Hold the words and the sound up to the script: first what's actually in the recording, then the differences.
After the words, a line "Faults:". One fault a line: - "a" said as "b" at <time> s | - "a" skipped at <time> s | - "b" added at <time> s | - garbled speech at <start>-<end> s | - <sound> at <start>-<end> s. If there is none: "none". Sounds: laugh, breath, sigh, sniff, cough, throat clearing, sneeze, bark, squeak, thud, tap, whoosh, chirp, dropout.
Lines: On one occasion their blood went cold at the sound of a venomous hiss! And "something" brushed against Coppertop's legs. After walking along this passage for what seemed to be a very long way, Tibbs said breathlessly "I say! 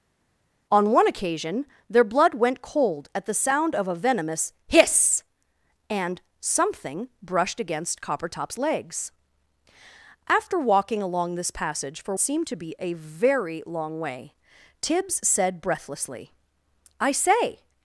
On one occasion their blood went cold at the sound of a venomous hiss! And "something" brushed against Coppertop's legs. After walking along this passage for seemed to be a very long way, Tibbs said breathlessly "I say!
Faults:
- "what" skipped at 12.1 s